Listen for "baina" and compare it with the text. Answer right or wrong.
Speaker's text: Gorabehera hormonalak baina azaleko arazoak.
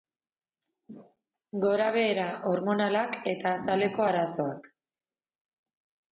wrong